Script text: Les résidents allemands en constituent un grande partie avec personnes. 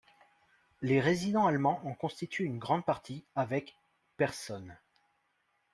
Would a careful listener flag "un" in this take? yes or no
yes